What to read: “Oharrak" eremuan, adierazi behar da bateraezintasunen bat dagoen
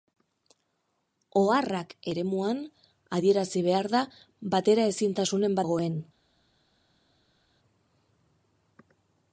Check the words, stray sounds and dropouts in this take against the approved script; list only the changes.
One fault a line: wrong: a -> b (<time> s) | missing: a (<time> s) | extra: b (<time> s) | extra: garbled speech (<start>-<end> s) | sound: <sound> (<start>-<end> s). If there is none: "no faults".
missing: bat (5.6 s)